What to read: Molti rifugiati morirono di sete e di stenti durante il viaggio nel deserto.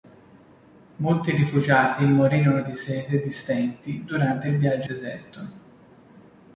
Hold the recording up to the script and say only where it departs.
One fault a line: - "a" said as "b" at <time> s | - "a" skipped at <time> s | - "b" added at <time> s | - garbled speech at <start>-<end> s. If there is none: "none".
- "nel" skipped at 4.9 s